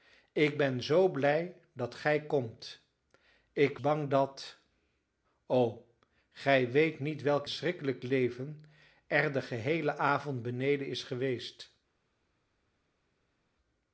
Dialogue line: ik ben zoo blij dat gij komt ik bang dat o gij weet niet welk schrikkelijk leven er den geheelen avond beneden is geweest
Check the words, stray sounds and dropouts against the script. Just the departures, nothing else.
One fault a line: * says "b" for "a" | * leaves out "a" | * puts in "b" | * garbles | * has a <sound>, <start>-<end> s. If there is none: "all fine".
all fine